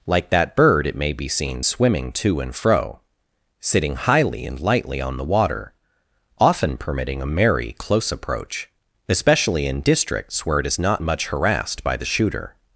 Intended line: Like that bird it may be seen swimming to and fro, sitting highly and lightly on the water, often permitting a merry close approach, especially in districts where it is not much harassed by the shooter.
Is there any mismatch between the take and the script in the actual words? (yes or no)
no